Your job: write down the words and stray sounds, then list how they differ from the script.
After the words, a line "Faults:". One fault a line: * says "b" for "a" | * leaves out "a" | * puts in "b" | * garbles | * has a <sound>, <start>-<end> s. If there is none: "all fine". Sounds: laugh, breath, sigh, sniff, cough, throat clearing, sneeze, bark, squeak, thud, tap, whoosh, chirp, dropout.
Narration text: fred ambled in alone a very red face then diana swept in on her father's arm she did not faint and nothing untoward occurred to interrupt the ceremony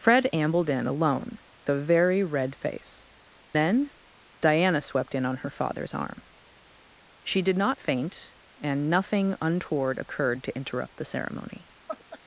fred ambled in alone a very red face then diana swept in on her father's arm she did not faint and nothing untoward occurred to interrupt the ceremony
Faults:
* has a laugh, 11.9-12.2 s